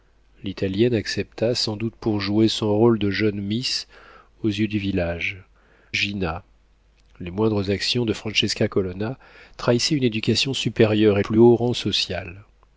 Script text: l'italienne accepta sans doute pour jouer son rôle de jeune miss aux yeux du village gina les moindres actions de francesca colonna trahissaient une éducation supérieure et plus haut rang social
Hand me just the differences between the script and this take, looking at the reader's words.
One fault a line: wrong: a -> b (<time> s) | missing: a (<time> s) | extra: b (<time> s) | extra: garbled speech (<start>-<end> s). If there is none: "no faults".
no faults